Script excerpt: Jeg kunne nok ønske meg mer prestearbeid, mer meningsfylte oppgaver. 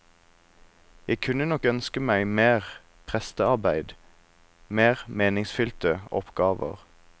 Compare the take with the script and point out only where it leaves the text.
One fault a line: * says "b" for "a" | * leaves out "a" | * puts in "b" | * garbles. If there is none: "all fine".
all fine